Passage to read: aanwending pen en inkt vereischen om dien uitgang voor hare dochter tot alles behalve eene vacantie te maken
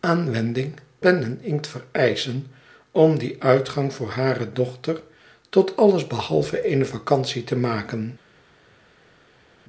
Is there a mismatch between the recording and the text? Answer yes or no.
no